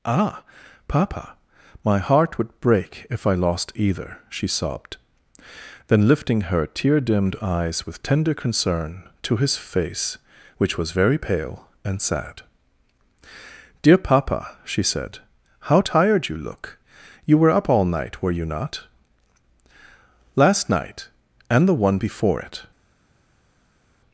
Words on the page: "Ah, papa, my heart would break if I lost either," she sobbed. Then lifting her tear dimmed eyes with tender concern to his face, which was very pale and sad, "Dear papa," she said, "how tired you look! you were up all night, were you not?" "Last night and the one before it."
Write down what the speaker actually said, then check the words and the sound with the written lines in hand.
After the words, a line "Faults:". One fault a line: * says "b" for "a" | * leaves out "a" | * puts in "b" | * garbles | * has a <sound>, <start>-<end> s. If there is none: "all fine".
"Ah, papa, my heart would break if I lost either," she sobbed. Then lifting her tear dimmed eyes with tender concern to his face, which was very pale and sad, "Dear papa," she said, "how tired you look! you were up all night, were you not?" "Last night and the one before it."
Faults:
all fine